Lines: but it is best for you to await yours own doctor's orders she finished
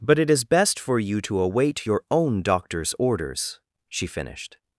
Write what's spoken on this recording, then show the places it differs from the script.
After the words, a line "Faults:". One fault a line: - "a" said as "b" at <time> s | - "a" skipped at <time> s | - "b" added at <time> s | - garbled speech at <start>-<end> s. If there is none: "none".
but it is best for you to await your own doctor's orders she finished
Faults:
- "yours" said as "your" at 1.9 s